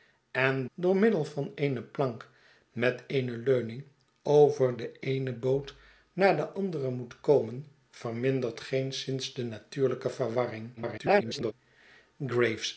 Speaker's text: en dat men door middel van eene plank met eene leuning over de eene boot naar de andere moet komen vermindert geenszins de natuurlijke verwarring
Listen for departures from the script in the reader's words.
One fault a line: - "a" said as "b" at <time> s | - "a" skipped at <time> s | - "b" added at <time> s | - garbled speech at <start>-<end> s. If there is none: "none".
- "dat men" skipped at 0.7 s
- garbled speech at 10.8-11.5 s